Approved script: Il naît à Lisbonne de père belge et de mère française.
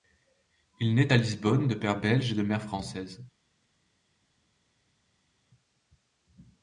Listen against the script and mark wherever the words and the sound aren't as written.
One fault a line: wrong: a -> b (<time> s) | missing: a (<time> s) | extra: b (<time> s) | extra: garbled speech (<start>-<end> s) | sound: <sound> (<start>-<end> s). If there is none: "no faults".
no faults